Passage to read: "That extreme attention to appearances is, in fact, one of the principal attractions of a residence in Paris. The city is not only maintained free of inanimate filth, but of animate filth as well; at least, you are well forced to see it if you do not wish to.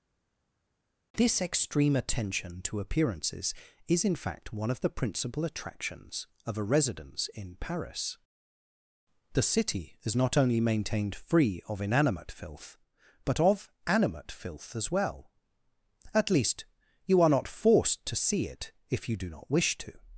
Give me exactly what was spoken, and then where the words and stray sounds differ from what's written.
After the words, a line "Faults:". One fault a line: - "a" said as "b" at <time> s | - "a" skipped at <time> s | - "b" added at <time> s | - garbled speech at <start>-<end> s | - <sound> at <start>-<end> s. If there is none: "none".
"This extreme attention to appearances is, in fact, one of the principal attractions of a residence in Paris. The city is not only maintained free of inanimate filth, but of animate filth as well; at least, you are not forced to see it if you do not wish to.
Faults:
- "That" said as "This" at 1.1 s
- "well" said as "not" at 17.3 s